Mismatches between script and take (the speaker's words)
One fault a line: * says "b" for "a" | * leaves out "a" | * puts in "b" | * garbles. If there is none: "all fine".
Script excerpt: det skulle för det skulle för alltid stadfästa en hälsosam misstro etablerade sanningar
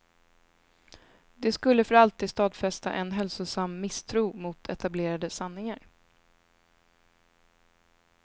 * leaves out "det skulle för"
* puts in "mot"